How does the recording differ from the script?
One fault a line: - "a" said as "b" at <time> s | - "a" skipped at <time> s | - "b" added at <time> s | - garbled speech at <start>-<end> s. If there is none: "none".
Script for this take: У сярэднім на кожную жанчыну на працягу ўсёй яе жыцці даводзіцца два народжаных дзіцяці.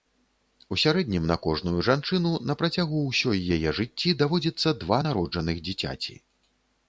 none